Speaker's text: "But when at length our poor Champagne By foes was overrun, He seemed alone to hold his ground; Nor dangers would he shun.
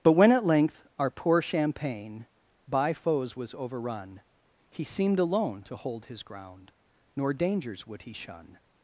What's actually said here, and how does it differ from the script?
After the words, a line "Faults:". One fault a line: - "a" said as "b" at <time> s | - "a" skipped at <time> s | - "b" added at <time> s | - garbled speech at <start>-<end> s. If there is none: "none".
"But when at length our poor Champagne By foes was overrun, He seemed alone to hold his ground; Nor dangers would he shun.
Faults:
none